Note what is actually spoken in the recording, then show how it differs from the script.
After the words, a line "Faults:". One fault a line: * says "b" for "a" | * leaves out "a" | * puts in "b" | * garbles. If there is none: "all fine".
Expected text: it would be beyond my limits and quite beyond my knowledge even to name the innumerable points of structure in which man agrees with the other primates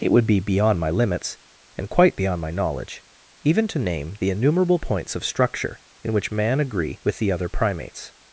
it would be beyond my limits and quite beyond my knowledge even to name the innumerable points of structure in which man agree with the other primates
Faults:
* says "agree" for "agrees"